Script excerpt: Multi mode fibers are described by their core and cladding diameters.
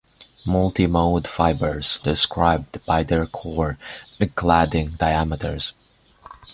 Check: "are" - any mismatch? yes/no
yes